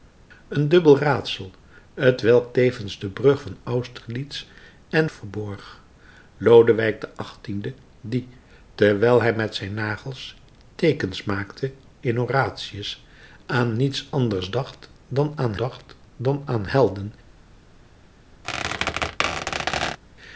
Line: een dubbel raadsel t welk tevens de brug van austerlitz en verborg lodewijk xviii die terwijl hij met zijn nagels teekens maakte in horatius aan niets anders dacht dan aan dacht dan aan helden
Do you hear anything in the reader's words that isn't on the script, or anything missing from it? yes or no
no